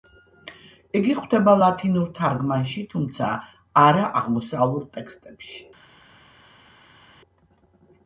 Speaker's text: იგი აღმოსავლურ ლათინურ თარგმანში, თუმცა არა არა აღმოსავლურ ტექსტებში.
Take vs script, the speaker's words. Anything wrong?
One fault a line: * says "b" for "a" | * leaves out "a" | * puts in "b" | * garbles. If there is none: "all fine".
* says "გვხვდება" for "აღმოსავლურ"
* leaves out "არა"